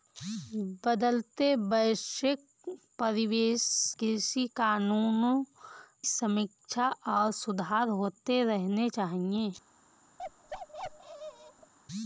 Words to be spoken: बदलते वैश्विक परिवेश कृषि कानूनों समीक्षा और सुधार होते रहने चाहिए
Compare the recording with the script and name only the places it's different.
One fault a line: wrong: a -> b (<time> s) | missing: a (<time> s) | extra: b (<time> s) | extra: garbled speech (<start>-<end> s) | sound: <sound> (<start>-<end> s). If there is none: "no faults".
sound: bark (10.2-11.7 s)